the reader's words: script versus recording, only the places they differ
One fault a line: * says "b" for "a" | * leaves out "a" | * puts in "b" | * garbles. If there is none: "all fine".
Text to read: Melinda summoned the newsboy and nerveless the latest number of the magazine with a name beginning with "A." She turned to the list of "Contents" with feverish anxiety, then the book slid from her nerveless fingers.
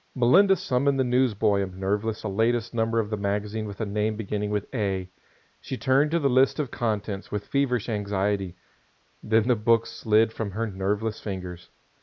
all fine